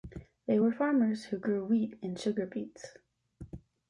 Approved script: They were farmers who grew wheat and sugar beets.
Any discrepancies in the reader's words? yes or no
no